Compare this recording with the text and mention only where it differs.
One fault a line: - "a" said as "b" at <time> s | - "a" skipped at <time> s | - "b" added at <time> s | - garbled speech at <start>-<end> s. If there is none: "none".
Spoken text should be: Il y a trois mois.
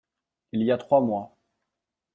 none